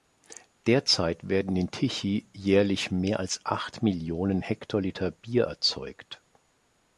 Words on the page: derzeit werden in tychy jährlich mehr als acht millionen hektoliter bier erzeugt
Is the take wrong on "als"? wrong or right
right